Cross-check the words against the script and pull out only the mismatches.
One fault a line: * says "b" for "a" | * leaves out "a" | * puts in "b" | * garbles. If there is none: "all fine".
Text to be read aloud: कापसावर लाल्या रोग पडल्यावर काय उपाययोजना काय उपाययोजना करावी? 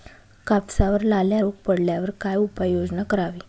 * leaves out "काय उपाययोजना"